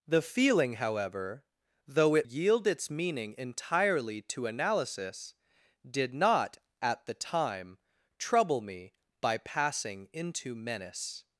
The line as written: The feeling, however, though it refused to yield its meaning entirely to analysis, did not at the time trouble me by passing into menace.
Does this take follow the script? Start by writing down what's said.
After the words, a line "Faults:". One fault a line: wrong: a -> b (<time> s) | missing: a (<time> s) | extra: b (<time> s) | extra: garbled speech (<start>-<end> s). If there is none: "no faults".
The feeling, however, though it yield its meaning entirely to analysis, did not at the time trouble me by passing into menace.
Faults:
missing: refused to (2.3 s)